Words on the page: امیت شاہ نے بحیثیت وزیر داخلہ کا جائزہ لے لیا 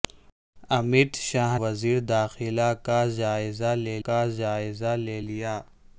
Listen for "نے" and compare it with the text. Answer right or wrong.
wrong